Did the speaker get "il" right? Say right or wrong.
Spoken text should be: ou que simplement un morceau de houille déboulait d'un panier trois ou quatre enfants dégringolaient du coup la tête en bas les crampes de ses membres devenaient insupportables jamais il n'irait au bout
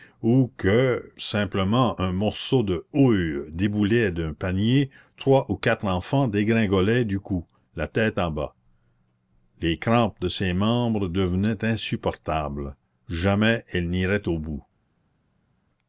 wrong